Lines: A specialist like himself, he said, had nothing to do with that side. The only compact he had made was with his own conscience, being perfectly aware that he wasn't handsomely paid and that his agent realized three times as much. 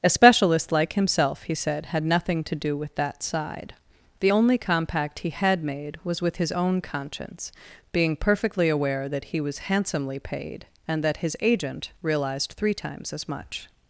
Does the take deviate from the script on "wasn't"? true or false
true